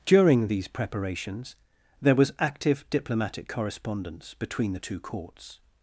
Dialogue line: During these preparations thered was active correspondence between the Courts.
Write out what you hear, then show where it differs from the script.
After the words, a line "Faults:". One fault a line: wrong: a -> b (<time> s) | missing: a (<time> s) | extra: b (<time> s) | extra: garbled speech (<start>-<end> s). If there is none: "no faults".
During these preparations there was active diplomatic correspondence between the two Courts.
Faults:
wrong: thered -> there (2.0 s)
extra: diplomatic (2.9 s)
extra: two (4.8 s)